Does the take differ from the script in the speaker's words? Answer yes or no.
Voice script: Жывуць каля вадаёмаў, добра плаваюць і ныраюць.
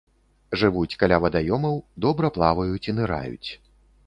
no